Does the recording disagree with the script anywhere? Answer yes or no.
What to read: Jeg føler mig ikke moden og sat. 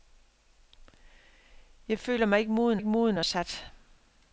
yes